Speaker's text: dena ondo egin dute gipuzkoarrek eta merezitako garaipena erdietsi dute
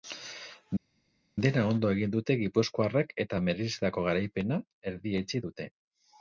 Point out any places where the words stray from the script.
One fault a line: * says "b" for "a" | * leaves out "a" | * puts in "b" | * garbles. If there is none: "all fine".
all fine